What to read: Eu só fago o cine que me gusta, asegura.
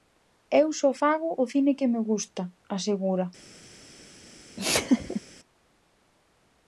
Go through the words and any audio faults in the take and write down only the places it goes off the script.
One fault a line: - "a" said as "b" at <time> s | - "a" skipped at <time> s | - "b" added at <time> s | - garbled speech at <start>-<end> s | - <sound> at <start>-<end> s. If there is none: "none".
- laugh at 4.6-5.2 s